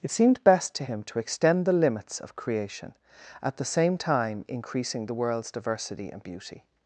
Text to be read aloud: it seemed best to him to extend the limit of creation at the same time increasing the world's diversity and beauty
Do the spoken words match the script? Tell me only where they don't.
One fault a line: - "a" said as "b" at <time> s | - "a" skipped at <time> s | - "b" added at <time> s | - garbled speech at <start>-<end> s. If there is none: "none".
- "limit" said as "limits" at 1.7 s